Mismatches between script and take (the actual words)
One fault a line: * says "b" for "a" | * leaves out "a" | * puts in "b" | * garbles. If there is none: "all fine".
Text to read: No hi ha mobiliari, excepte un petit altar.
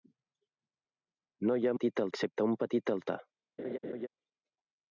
* says "petit" for "mobiliari"